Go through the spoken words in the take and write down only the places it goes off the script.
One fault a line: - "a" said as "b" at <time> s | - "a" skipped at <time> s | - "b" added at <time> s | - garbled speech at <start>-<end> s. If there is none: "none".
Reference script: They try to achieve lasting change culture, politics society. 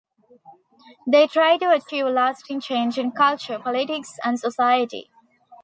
- "in" added at 3.0 s
- "and" added at 4.2 s